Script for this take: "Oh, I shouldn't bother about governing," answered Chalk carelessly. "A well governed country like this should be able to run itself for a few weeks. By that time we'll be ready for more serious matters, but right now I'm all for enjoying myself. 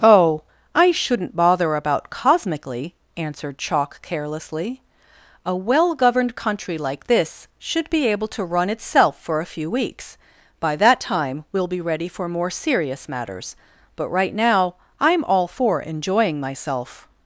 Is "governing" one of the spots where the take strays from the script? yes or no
yes